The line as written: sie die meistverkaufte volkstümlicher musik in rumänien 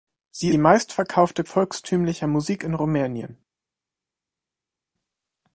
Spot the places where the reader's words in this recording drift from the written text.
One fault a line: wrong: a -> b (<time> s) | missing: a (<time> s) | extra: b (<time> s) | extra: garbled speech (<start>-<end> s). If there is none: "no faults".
no faults